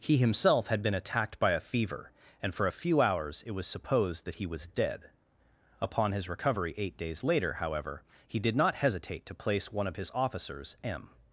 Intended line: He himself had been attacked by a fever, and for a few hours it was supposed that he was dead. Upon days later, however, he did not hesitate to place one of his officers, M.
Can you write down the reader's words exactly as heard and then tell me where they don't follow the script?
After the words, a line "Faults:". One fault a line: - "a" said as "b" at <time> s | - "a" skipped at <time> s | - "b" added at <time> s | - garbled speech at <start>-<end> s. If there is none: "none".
He himself had been attacked by a fever, and for a few hours it was supposed that he was dead. Upon his recovery eight days later, however, he did not hesitate to place one of his officers, M.
Faults:
- "his recovery eight" added at 6.1 s